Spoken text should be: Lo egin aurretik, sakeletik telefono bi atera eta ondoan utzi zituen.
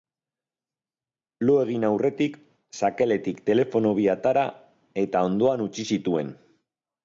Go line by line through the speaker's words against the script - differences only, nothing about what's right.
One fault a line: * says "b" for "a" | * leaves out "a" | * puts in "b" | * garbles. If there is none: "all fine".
all fine